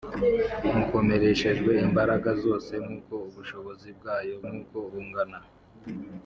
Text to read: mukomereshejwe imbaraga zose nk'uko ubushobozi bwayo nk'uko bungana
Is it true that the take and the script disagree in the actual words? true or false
false